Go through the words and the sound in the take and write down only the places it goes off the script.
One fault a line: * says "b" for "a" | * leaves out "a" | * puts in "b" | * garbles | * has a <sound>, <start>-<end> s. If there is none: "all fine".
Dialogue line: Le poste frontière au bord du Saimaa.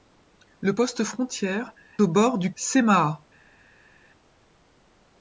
all fine